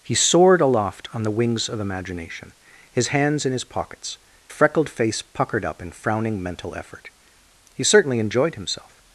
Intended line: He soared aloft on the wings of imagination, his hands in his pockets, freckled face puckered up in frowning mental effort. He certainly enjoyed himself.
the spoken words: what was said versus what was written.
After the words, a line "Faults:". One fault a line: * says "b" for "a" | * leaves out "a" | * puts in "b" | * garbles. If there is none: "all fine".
He soared aloft on the wings of imagination, his hands in his pockets, freckled face puckered up in frowning mental effort. He certainly enjoyed himself.
Faults:
all fine